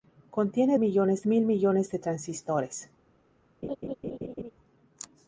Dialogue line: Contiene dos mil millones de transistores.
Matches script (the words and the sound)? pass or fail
fail